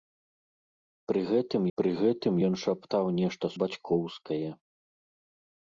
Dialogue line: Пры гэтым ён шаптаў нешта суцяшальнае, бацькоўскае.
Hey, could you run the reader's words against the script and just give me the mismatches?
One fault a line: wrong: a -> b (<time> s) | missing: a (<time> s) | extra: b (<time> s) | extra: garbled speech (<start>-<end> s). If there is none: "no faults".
extra: пры гэтым (1.8 s)
missing: суцяшальнае (3.5 s)